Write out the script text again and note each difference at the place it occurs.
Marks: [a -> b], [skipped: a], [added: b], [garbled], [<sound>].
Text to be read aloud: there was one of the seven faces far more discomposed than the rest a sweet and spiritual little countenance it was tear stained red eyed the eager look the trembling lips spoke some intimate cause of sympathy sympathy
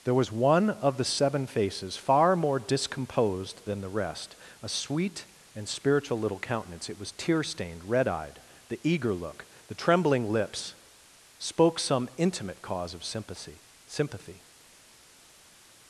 there was one of the seven faces far more discomposed than the rest a sweet and spiritual little countenance it was tear stained red eyed the eager look the trembling lips spoke some intimate cause of sympathy sympathy